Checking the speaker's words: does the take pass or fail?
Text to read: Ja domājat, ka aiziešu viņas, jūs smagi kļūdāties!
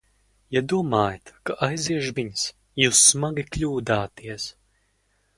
pass